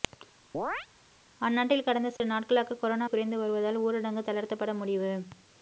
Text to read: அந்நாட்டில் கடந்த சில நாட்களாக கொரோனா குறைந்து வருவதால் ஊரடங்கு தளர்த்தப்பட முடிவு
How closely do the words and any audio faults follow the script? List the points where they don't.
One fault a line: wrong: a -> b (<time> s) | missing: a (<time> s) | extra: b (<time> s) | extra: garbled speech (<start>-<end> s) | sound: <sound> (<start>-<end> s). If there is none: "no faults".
sound: chirp (0.5-0.9 s)
sound: dropout (2.2-2.2 s)